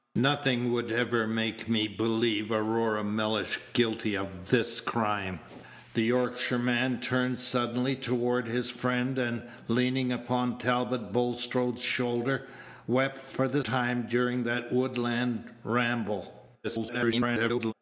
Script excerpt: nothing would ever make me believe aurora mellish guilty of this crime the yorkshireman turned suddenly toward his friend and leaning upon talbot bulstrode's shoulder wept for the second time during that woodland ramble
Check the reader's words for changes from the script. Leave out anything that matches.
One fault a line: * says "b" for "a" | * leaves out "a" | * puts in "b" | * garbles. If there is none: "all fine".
* leaves out "second"
* garbles